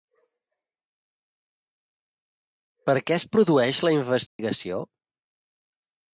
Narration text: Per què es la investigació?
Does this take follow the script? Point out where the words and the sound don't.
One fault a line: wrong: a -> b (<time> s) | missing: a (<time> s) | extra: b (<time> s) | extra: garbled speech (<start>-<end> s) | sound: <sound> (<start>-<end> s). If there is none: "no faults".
extra: produeix (3.4 s)
sound: dropout (4.3-4.4 s)